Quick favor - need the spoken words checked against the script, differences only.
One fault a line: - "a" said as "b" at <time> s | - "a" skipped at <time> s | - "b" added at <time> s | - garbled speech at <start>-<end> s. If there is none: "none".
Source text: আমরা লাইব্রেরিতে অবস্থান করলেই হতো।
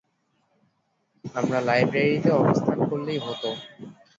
none